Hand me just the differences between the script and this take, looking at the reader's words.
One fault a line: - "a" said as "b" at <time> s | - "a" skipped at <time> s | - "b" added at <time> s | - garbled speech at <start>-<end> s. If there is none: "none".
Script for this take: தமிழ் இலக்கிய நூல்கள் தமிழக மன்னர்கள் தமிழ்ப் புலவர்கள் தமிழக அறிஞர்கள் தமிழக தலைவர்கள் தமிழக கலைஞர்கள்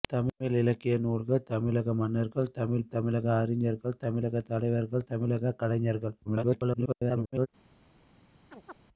- "புலவர்கள்" skipped at 2.9 s
- garbled speech at 6.3-7.5 s